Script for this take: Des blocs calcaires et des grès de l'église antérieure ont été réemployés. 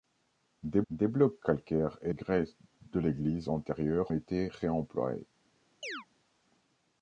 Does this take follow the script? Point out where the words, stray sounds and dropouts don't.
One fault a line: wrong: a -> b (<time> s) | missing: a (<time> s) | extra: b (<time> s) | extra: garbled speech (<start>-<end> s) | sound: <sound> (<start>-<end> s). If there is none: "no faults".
extra: des (0.9 s)
missing: des (2.1 s)
missing: ont (4.1 s)
sound: chirp (5.8-6.1 s)